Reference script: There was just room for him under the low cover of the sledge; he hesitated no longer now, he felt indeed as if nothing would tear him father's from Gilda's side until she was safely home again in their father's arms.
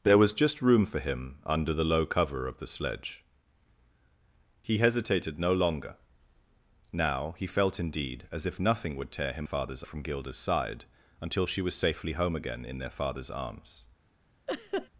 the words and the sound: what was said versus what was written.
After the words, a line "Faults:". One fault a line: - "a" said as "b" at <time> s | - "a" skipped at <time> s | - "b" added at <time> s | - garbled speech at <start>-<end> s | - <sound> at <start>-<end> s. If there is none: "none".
There was just room for him under the low cover of the sledge; he hesitated no longer now, he felt indeed as if nothing would tear him father's from Gilda's side until she was safely home again in their father's arms.
Faults:
- laugh at 14.5-14.9 s